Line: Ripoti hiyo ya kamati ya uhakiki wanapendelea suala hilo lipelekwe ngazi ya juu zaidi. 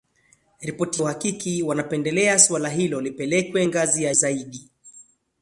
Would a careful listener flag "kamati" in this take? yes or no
yes